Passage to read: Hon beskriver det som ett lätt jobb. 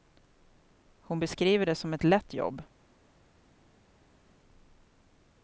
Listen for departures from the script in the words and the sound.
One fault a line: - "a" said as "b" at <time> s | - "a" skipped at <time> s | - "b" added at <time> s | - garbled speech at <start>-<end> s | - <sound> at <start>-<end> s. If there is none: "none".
none